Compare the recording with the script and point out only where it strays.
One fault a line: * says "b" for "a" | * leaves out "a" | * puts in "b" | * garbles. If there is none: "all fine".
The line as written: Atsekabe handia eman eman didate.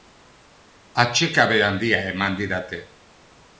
* leaves out "eman"